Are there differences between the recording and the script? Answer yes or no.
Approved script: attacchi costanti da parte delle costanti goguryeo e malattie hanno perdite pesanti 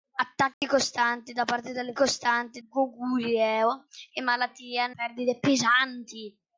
no